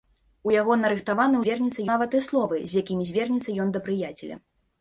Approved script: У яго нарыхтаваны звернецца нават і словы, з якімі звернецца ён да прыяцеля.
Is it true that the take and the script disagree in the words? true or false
false